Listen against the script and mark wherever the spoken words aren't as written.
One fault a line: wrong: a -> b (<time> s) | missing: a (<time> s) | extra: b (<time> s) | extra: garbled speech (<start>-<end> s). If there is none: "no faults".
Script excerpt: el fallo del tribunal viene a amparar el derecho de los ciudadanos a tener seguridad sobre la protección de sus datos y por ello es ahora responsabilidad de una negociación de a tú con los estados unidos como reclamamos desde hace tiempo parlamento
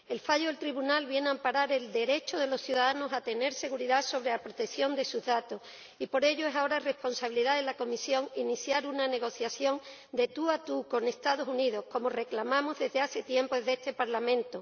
extra: la comisión iniciar (7.6 s)
extra: tú (10.3 s)
extra: desde este (13.6 s)